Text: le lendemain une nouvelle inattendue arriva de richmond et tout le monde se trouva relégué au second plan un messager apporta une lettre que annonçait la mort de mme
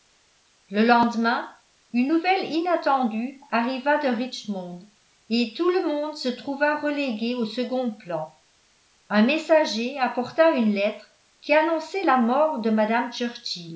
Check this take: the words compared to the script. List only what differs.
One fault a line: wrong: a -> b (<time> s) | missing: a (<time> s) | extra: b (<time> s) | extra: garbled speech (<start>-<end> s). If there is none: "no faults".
wrong: que -> qui (11.4 s)